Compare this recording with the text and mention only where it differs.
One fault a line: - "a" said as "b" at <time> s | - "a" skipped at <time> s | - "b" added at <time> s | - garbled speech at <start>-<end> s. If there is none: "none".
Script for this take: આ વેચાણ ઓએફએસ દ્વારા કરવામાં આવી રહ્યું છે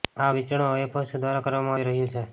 none